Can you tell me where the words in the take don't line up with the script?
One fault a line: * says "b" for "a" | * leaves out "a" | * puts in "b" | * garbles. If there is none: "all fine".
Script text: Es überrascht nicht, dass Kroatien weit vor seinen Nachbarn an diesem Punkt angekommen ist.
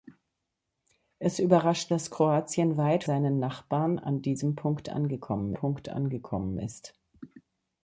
* leaves out "nicht"
* leaves out "vor"
* puts in "Punkt angekommen"